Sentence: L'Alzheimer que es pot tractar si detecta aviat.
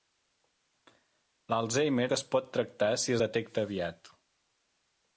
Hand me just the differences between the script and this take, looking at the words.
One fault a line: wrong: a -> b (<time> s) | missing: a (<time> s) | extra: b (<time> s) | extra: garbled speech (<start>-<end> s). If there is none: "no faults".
no faults